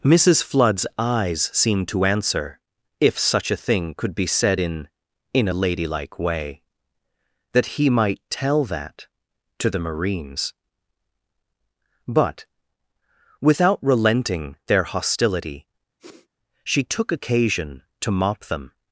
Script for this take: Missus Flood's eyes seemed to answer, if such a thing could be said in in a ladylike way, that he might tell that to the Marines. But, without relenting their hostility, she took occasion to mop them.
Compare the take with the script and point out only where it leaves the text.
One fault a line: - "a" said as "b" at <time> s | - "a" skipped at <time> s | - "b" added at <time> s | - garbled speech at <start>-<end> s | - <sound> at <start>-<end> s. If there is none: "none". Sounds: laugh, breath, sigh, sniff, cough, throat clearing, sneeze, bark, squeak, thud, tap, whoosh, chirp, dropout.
- sniff at 16.0-16.3 s